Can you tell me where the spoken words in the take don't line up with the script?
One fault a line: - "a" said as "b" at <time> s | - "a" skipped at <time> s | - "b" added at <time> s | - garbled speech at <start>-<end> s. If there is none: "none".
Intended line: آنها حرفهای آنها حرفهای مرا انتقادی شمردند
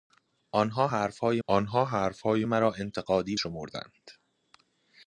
none